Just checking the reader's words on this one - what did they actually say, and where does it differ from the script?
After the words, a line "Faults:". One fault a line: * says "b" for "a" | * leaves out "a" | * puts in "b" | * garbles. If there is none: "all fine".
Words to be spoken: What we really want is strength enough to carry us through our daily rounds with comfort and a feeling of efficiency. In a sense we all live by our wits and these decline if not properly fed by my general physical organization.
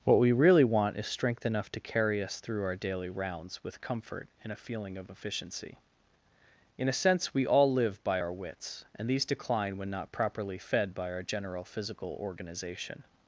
What we really want is strength enough to carry us through our daily rounds with comfort and a feeling of efficiency. In a sense we all live by our wits and these decline when not properly fed by our general physical organization.
Faults:
* says "when" for "if"
* says "our" for "my"